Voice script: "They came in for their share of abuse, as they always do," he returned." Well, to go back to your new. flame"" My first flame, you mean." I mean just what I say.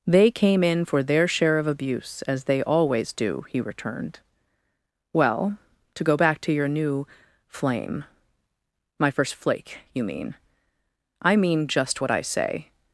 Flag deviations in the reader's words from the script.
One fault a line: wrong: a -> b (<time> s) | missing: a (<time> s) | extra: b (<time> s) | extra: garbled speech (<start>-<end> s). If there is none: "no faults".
wrong: flame -> flake (9.3 s)